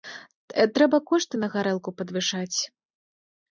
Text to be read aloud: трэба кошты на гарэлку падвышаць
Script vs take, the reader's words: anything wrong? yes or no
no